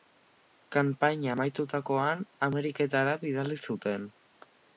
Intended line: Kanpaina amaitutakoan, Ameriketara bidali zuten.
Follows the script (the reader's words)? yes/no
yes